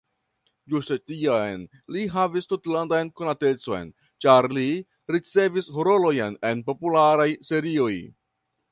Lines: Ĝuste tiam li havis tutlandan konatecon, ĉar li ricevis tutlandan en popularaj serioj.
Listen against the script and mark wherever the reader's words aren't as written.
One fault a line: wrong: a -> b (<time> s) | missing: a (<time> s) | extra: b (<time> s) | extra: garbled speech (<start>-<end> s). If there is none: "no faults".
wrong: tutlandan -> rolojn (5.9 s)